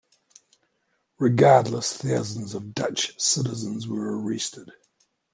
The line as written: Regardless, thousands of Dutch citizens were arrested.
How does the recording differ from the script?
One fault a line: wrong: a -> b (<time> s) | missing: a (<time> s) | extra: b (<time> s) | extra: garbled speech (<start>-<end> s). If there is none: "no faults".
no faults